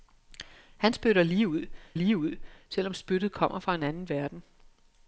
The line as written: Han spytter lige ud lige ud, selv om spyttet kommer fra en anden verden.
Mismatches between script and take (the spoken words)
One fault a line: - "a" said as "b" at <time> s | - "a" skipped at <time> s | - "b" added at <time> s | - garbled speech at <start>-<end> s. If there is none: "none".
none